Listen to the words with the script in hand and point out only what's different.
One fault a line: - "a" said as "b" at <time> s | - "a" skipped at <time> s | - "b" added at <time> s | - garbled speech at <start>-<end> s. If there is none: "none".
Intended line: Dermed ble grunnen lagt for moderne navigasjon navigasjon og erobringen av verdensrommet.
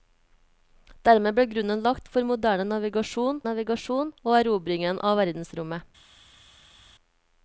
none